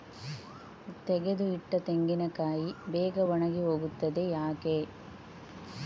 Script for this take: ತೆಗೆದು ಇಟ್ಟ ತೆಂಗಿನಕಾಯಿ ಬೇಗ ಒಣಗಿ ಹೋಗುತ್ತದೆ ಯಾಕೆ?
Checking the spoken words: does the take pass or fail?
pass